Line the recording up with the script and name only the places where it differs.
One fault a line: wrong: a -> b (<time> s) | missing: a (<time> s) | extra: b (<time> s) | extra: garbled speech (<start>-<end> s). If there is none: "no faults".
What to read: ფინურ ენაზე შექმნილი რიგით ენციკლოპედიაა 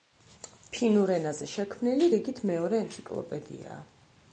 extra: მეორე (2.5 s)